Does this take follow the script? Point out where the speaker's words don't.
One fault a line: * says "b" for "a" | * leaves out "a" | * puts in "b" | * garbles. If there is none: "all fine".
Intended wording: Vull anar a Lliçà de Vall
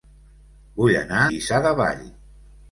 * leaves out "a"